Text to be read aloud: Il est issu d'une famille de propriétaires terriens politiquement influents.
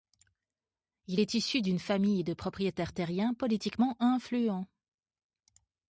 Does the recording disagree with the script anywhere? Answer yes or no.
no